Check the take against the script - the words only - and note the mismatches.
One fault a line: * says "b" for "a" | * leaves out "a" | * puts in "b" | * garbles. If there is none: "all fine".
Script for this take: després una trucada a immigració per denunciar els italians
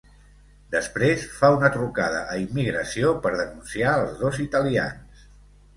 * puts in "fa"
* puts in "dos"